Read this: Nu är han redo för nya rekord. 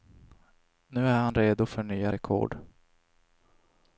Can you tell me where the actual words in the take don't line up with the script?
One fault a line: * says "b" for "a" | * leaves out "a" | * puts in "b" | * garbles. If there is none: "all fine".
all fine